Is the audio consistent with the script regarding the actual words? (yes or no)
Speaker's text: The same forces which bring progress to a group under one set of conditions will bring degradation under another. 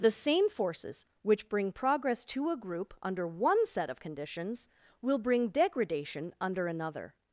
yes